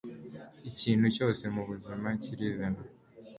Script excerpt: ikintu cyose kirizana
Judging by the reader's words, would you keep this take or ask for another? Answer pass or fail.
fail